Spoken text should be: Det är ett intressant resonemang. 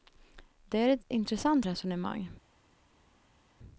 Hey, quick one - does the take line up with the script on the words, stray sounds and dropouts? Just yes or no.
yes